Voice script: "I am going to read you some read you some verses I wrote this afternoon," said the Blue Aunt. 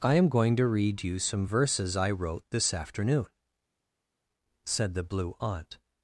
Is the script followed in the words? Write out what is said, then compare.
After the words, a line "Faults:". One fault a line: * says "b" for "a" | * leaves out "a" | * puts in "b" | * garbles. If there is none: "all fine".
"I am going to read you some verses I wrote this afternoon," said the Blue Aunt.
Faults:
* leaves out "read you some"